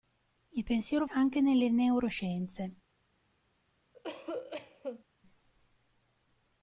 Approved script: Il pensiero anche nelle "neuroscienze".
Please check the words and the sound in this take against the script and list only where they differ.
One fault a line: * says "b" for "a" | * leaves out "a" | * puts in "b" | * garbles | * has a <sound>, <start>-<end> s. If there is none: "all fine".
* has a cough, 3.9-5.0 s